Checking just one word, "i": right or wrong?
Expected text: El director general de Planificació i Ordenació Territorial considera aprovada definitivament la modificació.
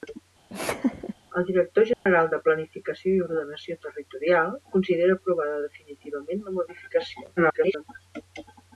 right